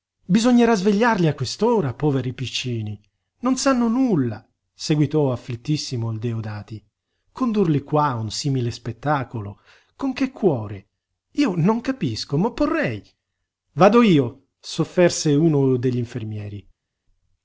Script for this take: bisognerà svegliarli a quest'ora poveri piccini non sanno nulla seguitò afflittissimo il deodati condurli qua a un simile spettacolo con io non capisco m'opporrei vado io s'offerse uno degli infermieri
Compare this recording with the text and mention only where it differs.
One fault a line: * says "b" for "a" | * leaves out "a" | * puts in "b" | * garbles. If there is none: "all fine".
* puts in "che cuore"